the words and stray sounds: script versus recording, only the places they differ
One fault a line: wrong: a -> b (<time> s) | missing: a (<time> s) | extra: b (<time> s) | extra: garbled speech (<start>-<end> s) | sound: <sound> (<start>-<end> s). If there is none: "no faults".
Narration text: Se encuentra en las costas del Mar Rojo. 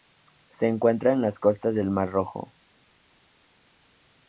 no faults